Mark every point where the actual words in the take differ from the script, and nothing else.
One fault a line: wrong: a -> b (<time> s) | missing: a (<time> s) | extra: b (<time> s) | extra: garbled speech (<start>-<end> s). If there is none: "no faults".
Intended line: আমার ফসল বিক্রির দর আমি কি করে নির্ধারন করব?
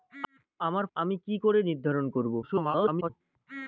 missing: ফসল বিক্রির দর (0.8 s)
extra: garbled speech (2.4-3.1 s)